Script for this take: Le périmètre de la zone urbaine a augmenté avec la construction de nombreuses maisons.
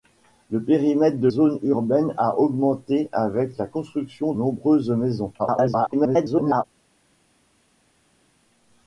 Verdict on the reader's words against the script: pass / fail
fail